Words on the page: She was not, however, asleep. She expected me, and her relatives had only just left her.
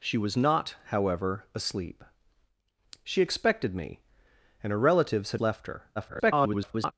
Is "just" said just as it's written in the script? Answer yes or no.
no